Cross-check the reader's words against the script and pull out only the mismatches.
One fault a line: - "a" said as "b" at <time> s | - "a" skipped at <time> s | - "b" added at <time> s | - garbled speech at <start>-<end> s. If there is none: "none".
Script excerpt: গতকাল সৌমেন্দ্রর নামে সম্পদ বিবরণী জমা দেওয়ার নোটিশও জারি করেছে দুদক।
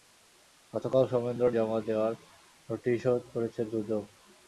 - "নামে সম্পদ বিবরণী" skipped at 1.5 s
- "জারি" skipped at 3.1 s